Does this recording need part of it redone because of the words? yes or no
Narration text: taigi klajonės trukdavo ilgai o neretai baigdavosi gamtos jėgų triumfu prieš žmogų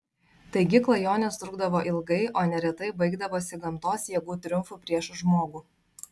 no